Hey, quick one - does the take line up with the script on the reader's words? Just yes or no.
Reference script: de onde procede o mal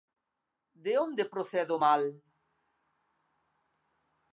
yes